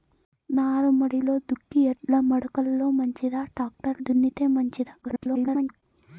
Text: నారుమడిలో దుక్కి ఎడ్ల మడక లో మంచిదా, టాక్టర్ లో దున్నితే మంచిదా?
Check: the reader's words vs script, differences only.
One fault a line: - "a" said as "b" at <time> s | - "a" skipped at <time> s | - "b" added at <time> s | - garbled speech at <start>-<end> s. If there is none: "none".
- "లో" skipped at 4.0 s
- garbled speech at 5.0-5.8 s